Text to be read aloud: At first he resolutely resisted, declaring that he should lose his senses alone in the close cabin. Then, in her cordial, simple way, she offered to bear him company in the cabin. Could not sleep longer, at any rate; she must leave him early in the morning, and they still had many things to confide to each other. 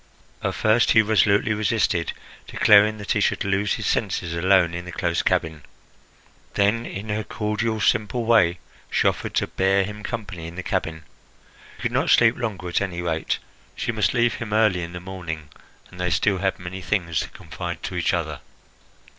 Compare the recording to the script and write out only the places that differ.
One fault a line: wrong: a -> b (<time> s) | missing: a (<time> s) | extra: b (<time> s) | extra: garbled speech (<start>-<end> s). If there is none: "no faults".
no faults